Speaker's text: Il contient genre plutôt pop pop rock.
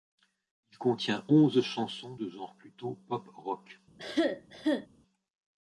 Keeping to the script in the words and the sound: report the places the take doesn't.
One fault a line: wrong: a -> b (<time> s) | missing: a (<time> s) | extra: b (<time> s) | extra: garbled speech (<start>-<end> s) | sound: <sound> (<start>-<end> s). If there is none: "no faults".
extra: onze chansons de (1.3 s)
missing: pop (3.3 s)
sound: cough (4.0-4.9 s)